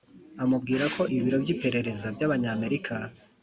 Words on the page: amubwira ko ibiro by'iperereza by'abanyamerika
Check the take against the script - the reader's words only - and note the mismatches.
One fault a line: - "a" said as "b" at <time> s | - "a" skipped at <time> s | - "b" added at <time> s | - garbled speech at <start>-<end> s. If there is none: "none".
none